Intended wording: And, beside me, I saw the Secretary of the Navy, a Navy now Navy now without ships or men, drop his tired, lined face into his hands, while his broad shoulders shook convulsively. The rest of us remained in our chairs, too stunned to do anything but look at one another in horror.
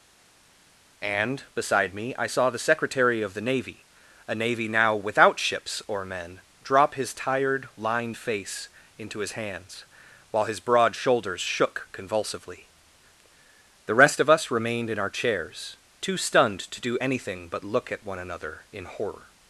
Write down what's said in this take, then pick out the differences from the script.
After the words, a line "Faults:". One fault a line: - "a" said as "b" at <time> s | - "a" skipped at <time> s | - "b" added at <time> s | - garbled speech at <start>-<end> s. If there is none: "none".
And, beside me, I saw the Secretary of the Navy, a Navy now without ships or men, drop his tired, lined face into his hands, while his broad shoulders shook convulsively. The rest of us remained in our chairs, too stunned to do anything but look at one another in horror.
Faults:
- "Navy now" skipped at 4.9 s